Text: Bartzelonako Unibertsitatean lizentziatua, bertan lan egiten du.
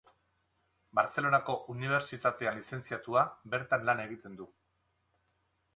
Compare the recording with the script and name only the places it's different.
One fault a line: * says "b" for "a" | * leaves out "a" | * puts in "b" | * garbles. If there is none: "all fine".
all fine